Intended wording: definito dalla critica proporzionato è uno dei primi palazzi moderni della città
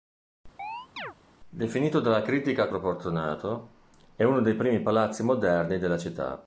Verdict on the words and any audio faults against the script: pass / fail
fail